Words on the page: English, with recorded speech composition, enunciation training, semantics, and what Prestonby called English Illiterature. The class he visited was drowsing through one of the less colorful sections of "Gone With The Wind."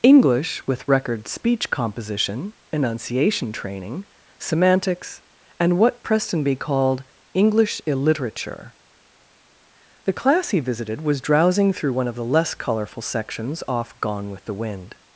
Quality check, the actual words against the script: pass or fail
fail